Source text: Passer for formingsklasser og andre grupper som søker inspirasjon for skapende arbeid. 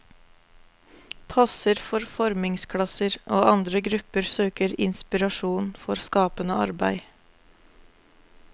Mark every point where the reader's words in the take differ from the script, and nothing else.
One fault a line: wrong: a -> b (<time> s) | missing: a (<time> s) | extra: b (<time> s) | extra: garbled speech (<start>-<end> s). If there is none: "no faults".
missing: som (4.3 s)